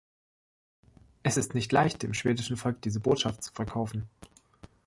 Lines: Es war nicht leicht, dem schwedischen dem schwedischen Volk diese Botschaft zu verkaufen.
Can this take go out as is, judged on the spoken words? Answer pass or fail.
fail